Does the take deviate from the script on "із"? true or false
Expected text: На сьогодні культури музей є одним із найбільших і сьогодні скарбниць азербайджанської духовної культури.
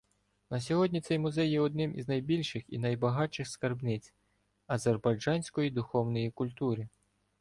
false